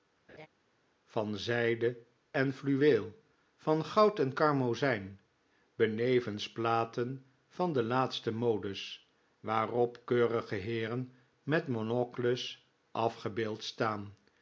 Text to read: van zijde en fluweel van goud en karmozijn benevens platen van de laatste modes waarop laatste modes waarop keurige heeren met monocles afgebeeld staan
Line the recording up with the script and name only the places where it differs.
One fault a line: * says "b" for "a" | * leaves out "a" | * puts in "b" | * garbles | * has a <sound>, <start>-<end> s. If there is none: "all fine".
* has a laugh, 0.3-0.5 s
* leaves out "laatste modes waarop"